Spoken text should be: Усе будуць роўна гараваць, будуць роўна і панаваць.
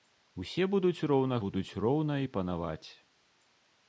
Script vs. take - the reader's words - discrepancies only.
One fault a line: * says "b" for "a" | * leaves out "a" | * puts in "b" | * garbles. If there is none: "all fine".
* leaves out "гараваць"